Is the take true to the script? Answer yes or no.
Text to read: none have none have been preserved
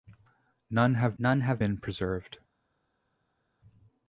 yes